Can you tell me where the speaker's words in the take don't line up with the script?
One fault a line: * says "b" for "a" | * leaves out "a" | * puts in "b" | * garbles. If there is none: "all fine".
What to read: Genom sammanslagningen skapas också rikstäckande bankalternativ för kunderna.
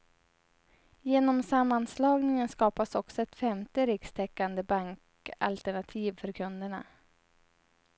* puts in "ett femte"